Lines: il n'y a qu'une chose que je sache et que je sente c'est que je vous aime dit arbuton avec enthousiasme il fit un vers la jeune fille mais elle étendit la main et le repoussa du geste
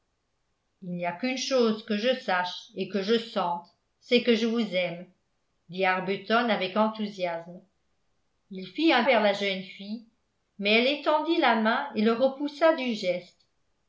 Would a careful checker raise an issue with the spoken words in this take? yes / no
no